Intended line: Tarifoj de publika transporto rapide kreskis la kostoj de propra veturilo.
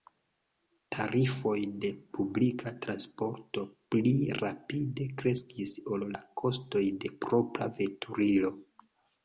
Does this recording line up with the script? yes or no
no